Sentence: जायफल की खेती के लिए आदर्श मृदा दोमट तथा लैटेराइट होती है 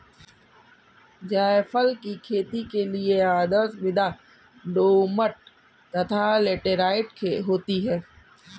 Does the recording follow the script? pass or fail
pass